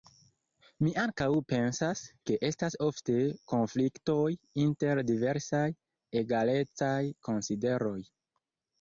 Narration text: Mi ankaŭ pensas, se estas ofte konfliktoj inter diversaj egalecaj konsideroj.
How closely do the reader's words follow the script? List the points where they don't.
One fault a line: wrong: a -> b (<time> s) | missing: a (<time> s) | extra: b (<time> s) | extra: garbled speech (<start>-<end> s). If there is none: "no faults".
wrong: se -> ke (2.3 s)